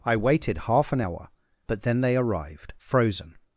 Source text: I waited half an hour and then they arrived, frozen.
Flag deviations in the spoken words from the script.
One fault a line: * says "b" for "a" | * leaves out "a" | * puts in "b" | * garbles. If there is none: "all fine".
* says "but" for "and"